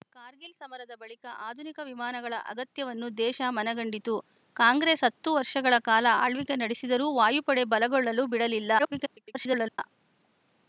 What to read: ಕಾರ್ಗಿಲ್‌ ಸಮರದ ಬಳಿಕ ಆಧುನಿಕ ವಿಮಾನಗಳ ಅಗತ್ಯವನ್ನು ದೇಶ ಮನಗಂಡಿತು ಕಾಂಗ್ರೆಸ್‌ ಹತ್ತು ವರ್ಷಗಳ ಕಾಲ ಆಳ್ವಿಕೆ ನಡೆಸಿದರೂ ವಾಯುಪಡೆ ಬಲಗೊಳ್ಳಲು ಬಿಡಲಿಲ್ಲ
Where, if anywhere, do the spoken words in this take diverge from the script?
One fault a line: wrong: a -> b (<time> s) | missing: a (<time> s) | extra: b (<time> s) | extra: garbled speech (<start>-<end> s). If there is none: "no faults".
extra: garbled speech (8.8-9.8 s)